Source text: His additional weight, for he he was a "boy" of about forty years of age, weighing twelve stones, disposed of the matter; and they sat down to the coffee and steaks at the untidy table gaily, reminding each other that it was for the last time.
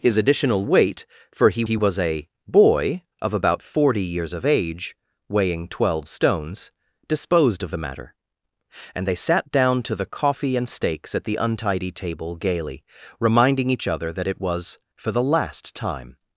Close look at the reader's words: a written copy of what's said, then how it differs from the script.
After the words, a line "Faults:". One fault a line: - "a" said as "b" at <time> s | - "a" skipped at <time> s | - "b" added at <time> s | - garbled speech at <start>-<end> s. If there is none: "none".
His additional weight, for he he was a "boy" of about forty years of age, weighing twelve stones, disposed of the matter; and they sat down to the coffee and steaks at the untidy table gaily, reminding each other that it was for the last time.
Faults:
none